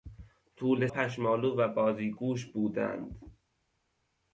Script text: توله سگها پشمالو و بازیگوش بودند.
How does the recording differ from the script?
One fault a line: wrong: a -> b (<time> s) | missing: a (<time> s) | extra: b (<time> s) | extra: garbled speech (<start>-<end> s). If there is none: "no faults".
missing: سگها (0.9 s)